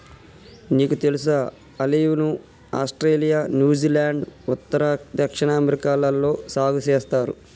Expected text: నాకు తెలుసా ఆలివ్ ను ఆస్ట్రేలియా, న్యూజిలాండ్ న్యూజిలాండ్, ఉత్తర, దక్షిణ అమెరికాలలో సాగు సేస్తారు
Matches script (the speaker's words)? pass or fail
fail